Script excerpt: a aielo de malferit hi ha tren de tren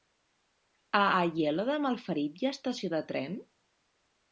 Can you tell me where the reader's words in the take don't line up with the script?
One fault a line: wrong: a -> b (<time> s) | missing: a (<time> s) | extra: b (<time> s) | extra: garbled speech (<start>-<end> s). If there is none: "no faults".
wrong: tren -> estació (2.6 s)